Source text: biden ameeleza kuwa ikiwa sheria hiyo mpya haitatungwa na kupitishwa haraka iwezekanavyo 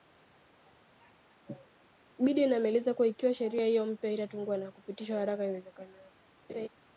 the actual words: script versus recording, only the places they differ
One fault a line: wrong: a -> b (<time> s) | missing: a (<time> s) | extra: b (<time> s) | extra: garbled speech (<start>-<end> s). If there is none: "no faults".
no faults